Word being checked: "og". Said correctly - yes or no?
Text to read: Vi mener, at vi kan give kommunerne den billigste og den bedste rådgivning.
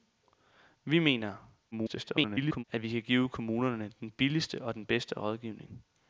yes